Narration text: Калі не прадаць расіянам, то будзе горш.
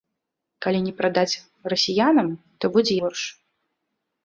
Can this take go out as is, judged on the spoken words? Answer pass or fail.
pass